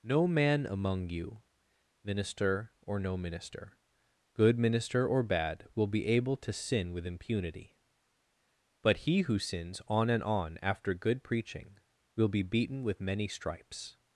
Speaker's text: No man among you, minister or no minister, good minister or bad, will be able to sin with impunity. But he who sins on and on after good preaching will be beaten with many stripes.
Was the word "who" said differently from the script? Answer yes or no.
no